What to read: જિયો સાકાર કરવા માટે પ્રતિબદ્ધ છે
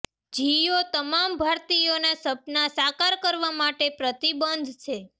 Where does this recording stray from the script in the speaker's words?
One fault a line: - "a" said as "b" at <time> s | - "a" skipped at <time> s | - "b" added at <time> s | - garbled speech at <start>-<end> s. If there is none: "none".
- "તમામ ભારતીયોના સપના" added at 0.9 s